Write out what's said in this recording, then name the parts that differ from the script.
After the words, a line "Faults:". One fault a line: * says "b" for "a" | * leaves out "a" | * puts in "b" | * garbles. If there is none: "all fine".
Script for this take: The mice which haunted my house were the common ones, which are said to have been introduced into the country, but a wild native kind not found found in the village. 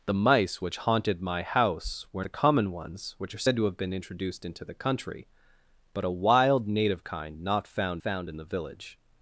The mice which haunted my house were the common ones, which are said to have been introduced into the country, but a wild native kind not found found in the village.
Faults:
all fine